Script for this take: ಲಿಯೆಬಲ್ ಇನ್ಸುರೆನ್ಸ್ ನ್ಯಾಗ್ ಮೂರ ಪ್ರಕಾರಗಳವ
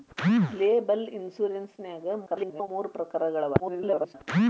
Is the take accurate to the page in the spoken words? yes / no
no